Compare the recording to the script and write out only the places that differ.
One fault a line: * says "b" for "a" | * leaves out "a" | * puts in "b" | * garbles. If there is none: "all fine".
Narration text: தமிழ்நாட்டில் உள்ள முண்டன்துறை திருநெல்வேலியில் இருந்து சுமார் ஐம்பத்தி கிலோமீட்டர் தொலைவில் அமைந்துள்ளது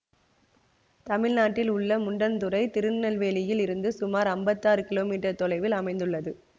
* puts in "ஆறு"